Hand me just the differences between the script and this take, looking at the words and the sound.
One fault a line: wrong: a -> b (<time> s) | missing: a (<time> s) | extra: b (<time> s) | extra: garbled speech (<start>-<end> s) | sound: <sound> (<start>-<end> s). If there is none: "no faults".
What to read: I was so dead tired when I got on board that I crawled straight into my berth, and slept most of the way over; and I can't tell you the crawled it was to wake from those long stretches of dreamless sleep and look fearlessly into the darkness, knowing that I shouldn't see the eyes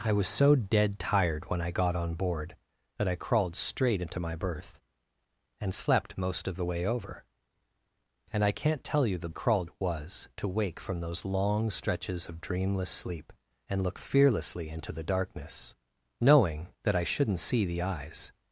no faults